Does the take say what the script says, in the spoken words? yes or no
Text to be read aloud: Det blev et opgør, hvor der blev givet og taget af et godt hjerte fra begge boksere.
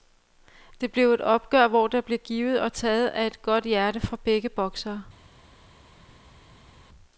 yes